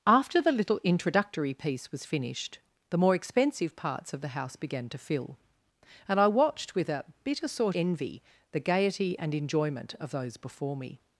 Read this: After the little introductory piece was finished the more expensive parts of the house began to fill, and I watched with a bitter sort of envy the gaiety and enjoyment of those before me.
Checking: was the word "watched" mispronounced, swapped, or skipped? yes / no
no